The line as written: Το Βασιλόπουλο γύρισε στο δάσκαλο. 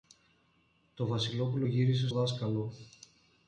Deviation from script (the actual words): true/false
true